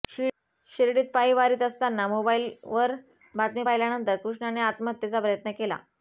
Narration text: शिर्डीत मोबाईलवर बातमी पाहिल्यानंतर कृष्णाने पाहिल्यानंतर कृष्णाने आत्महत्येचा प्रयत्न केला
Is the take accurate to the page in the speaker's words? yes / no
no